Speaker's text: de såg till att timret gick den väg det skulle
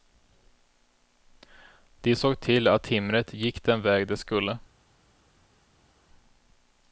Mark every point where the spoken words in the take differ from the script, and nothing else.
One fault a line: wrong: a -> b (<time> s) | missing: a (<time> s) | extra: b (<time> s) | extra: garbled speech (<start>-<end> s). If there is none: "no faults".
no faults